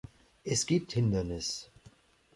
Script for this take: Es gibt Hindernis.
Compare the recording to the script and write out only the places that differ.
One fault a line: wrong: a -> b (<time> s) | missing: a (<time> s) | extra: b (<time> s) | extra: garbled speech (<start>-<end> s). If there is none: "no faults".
no faults